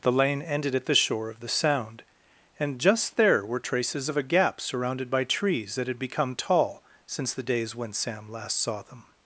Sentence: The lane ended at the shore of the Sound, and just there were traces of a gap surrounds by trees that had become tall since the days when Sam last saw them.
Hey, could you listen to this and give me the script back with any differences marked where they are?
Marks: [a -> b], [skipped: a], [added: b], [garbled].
The lane ended at the shore of the Sound, and just there were traces of a gap [surrounds -> surrounded] by trees that had become tall since the days when Sam last saw them.